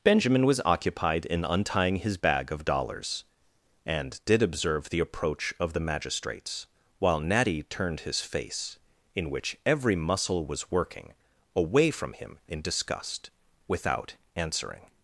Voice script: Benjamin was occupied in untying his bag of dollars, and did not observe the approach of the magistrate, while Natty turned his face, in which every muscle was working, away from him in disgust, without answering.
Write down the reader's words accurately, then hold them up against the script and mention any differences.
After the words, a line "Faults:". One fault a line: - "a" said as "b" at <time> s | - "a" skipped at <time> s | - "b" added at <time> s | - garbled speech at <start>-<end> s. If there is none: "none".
Benjamin was occupied in untying his bag of dollars, and did observe the approach of the magistrates, while Natty turned his face, in which every muscle was working, away from him in disgust, without answering.
Faults:
- "not" skipped at 4.4 s
- "magistrate" said as "magistrates" at 5.8 s